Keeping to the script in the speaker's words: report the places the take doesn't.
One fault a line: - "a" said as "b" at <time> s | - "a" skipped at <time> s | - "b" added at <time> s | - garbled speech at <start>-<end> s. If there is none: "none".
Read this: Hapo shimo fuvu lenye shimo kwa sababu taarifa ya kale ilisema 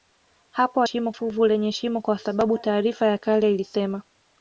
none